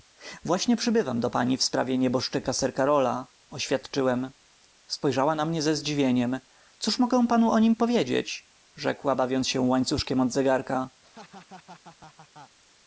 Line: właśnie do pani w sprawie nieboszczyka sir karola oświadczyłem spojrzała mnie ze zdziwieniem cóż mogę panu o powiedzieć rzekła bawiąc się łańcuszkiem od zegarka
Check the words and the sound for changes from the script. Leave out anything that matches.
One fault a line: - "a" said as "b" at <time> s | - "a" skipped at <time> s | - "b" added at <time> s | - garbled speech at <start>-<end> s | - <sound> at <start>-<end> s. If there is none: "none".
- "przybywam" added at 0.8 s
- "na" added at 5.3 s
- "nim" added at 7.6 s
- laugh at 11.0-12.6 s